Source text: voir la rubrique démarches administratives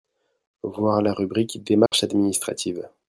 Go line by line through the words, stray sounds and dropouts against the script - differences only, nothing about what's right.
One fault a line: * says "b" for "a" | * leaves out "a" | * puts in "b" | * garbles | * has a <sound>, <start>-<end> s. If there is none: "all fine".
* has a dropout, 1.9-1.9 s